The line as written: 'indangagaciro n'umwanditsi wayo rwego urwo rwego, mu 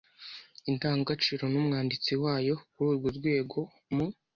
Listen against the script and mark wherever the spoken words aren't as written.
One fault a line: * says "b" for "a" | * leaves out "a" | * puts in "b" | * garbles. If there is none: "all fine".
* says "kuri" for "rwego"